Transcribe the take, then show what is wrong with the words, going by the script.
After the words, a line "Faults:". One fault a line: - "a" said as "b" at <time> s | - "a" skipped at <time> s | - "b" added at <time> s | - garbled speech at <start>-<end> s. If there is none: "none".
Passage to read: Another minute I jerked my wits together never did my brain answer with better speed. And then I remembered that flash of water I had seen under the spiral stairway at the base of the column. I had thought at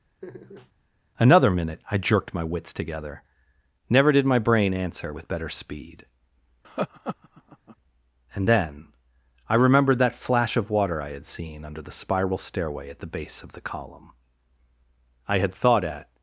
Another minute I jerked my wits together never did my brain answer with better speed. And then I remembered that flash of water I had seen under the spiral stairway at the base of the column. I had thought at
Faults:
none